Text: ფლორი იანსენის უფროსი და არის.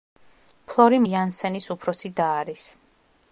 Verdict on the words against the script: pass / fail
pass